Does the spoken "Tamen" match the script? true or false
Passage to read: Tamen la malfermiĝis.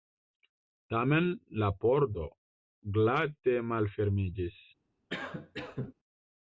true